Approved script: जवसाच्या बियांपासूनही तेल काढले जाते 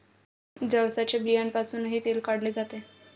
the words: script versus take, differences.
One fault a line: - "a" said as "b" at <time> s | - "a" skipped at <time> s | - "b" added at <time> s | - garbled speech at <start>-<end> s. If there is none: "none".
none